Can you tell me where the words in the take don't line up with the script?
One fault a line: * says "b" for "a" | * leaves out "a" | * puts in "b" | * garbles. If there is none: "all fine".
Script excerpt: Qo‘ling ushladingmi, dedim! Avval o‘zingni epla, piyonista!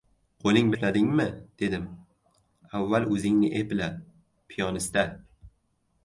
all fine